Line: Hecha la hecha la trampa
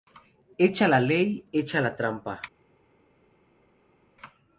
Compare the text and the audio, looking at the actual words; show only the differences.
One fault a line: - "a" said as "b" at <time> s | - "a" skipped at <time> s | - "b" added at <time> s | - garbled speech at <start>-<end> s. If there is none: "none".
- "ley" added at 1.0 s